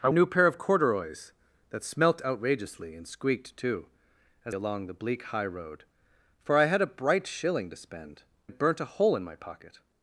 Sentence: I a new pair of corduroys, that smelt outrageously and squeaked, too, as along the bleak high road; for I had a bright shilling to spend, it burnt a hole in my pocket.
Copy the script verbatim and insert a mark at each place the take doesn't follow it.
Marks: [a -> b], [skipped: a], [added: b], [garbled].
I a new pair of corduroys, that smelt outrageously and squeaked, too, as along the bleak high road; for I had a bright shilling to spend, it burnt a hole in my pocket.